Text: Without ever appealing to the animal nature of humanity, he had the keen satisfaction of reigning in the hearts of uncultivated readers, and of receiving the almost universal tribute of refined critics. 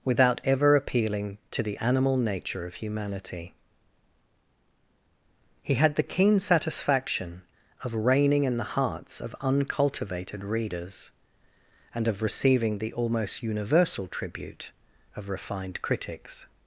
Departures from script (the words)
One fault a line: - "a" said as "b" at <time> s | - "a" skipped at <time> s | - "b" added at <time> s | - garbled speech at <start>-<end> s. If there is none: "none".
none